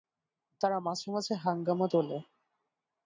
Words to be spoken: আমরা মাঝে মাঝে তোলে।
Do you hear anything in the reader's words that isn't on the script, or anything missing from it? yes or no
yes